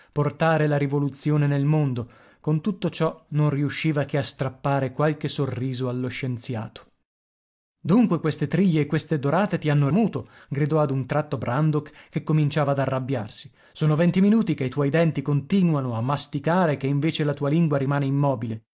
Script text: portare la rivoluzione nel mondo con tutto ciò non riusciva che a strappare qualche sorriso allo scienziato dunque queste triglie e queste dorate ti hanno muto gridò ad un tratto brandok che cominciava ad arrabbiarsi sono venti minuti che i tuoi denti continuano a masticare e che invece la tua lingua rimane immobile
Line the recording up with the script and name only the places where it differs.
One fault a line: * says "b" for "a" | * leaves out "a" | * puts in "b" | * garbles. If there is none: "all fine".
all fine